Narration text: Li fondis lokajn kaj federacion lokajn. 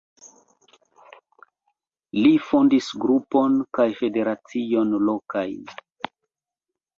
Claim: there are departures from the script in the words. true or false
true